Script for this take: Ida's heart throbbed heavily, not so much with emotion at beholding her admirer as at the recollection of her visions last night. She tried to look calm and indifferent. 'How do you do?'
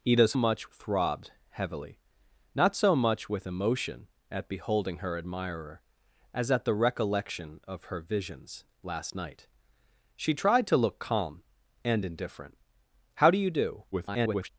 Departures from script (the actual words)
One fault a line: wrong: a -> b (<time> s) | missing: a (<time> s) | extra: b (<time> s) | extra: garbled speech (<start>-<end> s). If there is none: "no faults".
wrong: heart -> much (0.4 s)
extra: garbled speech (13.9-14.5 s)